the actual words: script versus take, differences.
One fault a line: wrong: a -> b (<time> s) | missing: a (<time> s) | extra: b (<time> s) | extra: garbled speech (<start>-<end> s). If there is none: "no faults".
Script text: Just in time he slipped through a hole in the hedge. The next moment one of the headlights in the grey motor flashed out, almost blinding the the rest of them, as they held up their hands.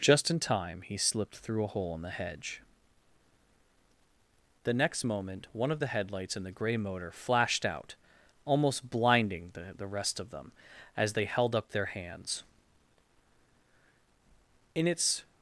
extra: In its (14.8 s)